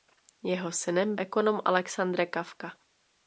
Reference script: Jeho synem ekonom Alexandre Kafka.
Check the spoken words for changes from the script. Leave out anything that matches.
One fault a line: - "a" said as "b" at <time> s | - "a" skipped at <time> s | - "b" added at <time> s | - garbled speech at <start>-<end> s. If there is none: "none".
none